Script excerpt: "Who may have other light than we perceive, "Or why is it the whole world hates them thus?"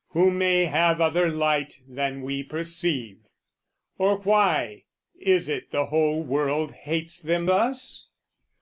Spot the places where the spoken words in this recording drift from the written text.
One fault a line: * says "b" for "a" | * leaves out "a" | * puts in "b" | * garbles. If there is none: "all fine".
all fine